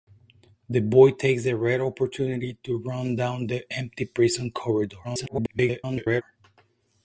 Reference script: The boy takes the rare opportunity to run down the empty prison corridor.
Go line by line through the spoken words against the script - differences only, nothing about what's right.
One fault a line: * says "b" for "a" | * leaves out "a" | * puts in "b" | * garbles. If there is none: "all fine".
* garbles